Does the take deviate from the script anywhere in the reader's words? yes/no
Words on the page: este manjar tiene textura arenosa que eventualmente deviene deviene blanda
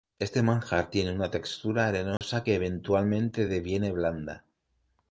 yes